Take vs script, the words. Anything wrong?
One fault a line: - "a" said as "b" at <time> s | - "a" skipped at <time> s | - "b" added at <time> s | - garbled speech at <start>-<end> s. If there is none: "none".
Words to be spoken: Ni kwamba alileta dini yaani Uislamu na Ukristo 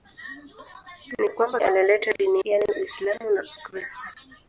none